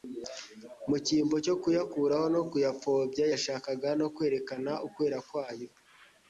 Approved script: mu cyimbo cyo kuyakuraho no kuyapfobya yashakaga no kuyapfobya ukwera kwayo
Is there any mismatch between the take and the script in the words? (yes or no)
yes